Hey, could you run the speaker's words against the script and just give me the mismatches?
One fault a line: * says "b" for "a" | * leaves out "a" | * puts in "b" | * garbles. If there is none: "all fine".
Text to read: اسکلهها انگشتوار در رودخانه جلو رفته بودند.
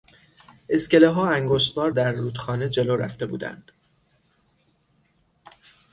all fine